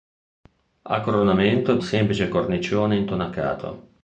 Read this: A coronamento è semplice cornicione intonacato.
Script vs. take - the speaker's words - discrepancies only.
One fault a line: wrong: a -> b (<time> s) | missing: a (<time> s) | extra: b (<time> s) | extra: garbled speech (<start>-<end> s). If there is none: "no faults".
no faults